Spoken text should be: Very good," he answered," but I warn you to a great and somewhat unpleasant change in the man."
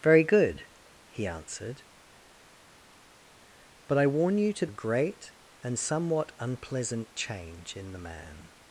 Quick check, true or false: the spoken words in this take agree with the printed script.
true